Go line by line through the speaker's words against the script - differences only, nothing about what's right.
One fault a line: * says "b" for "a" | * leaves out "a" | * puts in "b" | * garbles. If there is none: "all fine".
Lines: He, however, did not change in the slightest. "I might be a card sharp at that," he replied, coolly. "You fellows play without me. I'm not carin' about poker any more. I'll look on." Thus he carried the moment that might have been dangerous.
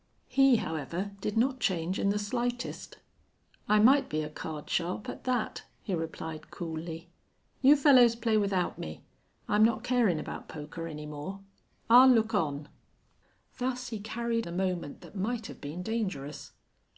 all fine